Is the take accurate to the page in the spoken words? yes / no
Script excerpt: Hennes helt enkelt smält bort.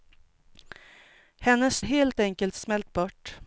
yes